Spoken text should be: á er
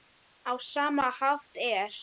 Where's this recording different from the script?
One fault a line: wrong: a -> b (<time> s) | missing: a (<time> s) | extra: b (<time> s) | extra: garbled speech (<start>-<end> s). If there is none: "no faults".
extra: sama hátt (0.7 s)